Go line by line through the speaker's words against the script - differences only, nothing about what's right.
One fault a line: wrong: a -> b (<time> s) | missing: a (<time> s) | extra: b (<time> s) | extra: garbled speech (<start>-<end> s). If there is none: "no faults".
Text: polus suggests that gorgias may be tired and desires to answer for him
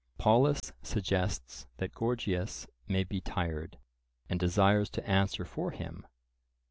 no faults